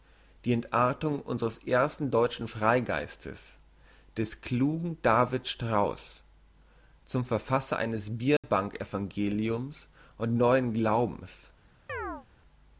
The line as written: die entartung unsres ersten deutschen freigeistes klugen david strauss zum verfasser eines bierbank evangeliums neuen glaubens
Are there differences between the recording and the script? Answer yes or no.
yes